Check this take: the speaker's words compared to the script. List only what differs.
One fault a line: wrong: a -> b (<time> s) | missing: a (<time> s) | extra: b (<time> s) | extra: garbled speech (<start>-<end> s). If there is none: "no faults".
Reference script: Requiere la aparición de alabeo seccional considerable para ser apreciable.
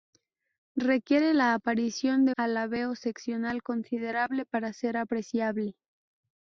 no faults